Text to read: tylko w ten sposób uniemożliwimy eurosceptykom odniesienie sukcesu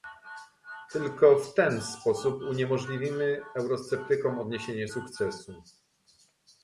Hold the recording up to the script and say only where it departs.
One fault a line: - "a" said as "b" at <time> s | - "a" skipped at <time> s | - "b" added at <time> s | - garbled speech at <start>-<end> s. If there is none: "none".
none